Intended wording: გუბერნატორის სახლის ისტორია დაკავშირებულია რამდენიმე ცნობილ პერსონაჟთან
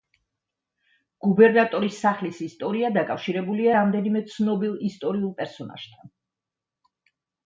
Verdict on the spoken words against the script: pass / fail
fail